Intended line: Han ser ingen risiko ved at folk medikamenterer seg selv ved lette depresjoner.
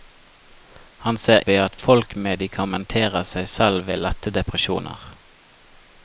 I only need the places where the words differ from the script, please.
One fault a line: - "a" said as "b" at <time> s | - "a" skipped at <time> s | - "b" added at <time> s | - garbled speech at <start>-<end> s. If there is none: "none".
- "ingen risiko" skipped at 1.4 s